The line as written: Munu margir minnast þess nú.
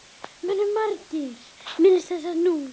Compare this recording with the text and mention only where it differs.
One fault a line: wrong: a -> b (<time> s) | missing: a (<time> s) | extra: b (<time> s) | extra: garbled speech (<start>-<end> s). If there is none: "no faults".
no faults